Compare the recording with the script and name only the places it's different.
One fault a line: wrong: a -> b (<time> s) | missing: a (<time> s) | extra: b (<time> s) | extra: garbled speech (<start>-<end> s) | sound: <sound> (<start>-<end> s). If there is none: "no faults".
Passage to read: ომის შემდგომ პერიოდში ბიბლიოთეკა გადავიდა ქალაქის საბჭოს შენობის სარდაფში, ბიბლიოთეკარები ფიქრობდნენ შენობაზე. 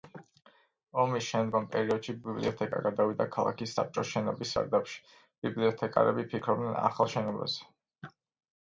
extra: ახალ (6.9 s)